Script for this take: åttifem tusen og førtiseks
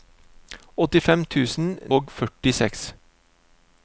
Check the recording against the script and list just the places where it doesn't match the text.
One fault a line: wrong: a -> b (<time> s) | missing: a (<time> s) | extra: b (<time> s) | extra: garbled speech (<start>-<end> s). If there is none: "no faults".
no faults